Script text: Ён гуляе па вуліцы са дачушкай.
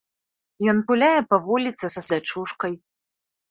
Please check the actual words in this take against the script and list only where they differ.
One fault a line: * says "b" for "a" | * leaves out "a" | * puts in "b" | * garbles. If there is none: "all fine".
all fine